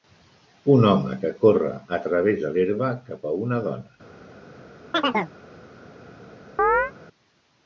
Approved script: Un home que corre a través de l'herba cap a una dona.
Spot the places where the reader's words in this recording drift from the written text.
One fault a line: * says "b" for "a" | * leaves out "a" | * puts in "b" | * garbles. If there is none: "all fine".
all fine